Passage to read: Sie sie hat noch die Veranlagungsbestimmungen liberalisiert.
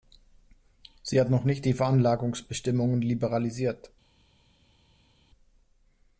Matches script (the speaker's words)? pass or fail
fail